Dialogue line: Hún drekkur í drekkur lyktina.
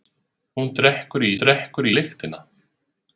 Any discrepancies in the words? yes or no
no